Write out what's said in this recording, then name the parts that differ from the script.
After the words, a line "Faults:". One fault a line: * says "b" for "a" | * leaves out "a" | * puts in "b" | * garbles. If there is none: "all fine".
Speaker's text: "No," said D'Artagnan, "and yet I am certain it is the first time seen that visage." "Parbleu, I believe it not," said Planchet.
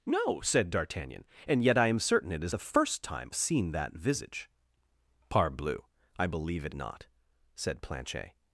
"No," said D'Artagnan, "and yet I am certain it is the first time seen that visage." "Parbleu, I believe it not," said Planchet.
Faults:
all fine